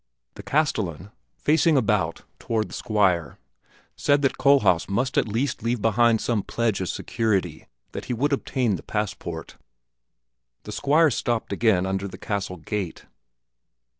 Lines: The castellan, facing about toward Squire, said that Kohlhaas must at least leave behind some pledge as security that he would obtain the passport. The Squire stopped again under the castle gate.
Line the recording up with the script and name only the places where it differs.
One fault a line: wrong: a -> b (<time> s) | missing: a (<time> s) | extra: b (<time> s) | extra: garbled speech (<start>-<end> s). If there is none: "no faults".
no faults